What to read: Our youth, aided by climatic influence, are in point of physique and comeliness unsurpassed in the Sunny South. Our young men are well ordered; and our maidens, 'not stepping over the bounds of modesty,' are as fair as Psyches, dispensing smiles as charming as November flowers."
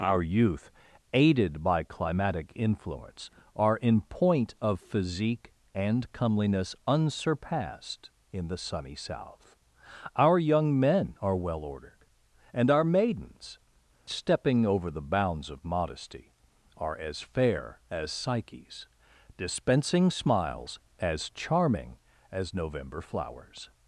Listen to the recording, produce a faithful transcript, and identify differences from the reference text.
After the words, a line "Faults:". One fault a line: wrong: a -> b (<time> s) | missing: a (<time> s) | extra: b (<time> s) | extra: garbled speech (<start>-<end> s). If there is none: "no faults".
Our youth, aided by climatic influence, are in point of physique and comeliness unsurpassed in the Sunny South. Our young men are well ordered; and our maidens, 'stepping over the bounds of modesty,' are as fair as Psyches, dispensing smiles as charming as November flowers."
Faults:
missing: not (13.6 s)